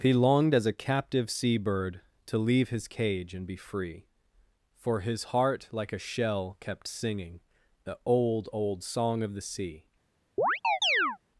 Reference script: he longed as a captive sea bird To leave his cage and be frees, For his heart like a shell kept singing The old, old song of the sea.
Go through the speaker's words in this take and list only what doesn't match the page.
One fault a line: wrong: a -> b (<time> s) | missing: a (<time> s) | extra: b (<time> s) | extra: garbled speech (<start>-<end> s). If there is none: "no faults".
wrong: frees -> free (3.6 s)